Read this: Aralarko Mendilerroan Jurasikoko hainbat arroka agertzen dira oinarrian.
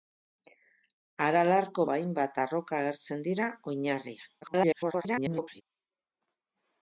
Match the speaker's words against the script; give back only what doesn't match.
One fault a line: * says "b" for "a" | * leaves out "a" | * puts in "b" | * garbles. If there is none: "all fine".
* leaves out "Mendilerroan Jurasikoko"
* garbles